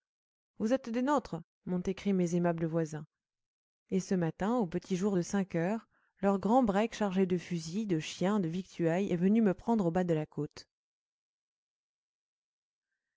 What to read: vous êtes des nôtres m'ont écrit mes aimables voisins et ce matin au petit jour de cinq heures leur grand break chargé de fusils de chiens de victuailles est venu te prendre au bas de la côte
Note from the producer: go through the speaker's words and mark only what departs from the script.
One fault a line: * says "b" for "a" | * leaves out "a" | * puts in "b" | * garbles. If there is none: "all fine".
* says "me" for "te"